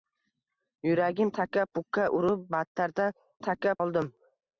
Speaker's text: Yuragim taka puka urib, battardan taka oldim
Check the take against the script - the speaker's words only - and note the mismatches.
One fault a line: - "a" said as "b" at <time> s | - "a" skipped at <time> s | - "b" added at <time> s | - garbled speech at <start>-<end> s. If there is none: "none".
none